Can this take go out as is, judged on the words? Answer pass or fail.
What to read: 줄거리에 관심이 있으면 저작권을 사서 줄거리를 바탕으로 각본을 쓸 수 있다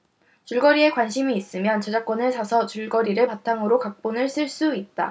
pass